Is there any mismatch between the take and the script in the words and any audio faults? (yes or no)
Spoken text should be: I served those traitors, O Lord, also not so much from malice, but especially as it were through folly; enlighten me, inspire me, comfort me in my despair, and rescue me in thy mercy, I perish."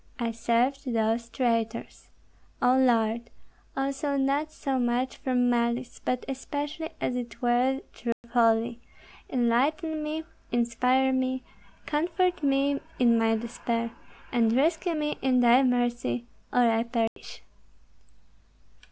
yes